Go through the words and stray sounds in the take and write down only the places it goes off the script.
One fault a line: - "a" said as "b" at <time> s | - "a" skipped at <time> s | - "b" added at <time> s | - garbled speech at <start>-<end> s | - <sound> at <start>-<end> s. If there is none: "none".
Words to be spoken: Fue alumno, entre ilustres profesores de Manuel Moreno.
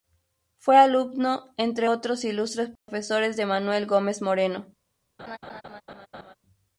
- "otros" added at 1.9 s
- dropout at 2.8-2.9 s
- "Gómez" added at 3.9 s
- laugh at 5.2-6.3 s